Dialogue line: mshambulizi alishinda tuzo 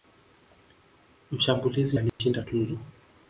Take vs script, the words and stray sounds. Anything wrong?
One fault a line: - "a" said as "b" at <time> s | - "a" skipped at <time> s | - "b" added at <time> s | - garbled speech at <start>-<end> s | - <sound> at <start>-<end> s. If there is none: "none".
- dropout at 2.1-2.2 s